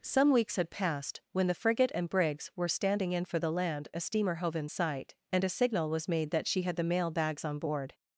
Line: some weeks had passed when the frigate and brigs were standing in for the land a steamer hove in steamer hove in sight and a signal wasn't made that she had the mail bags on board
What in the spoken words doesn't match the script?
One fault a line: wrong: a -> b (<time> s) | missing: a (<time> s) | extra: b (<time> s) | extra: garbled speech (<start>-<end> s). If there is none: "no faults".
missing: steamer hove in (4.7 s)
wrong: wasn't -> was (5.9 s)